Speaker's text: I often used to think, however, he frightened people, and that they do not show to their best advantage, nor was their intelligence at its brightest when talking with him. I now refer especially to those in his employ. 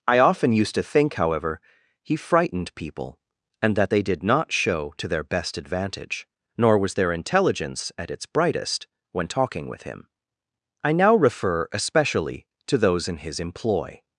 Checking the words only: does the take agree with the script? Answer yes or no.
no